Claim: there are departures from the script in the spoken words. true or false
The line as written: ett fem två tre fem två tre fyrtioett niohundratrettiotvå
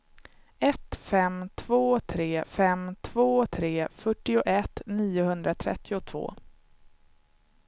false